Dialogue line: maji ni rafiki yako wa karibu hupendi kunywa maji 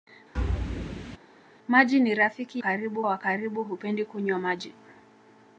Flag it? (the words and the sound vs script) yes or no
yes